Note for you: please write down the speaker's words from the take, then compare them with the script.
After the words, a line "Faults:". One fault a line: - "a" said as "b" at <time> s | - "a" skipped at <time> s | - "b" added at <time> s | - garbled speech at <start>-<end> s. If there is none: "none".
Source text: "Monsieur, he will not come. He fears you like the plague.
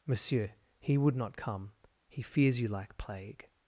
"Monsieur, he would not come. He fears you like plague.
Faults:
- "will" said as "would" at 1.0 s
- "the" skipped at 3.0 s